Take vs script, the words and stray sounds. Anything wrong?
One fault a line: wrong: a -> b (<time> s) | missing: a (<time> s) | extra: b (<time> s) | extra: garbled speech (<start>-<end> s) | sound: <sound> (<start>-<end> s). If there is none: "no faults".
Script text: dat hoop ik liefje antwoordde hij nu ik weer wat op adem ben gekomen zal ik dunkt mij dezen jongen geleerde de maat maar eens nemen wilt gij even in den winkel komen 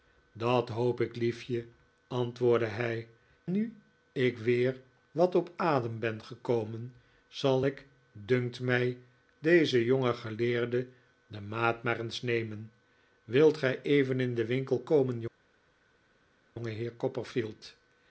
no faults